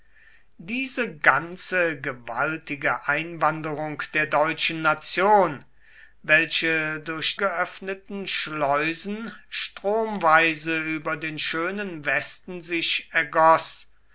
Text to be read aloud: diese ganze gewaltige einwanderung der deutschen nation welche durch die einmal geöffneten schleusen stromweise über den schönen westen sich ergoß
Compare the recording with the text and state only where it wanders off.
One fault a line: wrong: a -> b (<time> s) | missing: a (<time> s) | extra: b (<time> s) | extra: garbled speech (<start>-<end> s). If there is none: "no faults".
missing: die einmal (7.4 s)